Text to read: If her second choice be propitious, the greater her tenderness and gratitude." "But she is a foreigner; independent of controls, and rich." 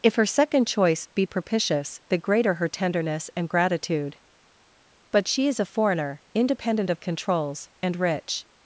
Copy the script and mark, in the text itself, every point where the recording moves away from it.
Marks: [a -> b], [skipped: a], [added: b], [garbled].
If her second choice be propitious, the greater her tenderness and gratitude." "But she is a foreigner; independent of controls, and rich."